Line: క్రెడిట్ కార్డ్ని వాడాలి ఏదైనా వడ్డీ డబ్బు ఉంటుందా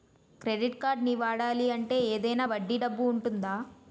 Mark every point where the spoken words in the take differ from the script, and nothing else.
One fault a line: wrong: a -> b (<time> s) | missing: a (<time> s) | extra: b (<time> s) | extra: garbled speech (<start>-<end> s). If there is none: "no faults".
extra: అంటే (1.7 s)